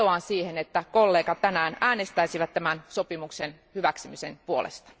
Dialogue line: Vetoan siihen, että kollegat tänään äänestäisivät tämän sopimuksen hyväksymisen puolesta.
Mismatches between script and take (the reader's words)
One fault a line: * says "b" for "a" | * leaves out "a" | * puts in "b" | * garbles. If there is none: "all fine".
all fine